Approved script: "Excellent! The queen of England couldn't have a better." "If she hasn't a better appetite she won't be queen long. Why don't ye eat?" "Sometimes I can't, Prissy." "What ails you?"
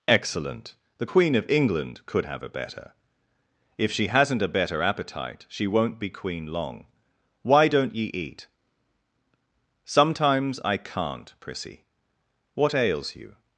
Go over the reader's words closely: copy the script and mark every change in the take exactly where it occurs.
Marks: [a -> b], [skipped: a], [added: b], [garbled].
"Excellent! The queen of England [couldn't -> could] have a better." "If she hasn't a better appetite she won't be queen long. Why don't ye eat?" "Sometimes I can't, Prissy." "What ails you?"